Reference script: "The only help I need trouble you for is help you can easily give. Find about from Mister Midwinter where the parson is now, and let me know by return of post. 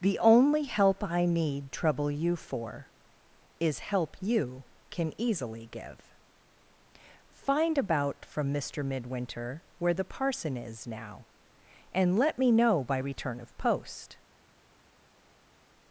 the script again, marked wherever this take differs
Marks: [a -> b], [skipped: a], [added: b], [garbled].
"The only help I need trouble you for is help you can easily give. Find about from Mister Midwinter where the parson is now, and let me know by return of post.